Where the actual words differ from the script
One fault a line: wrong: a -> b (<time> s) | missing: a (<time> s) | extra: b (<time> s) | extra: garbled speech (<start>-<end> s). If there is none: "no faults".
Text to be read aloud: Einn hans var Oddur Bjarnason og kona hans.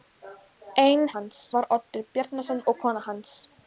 no faults